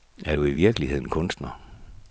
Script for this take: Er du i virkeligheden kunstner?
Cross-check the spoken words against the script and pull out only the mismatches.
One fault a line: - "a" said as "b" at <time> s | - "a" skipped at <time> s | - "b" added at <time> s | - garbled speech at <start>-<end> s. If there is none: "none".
none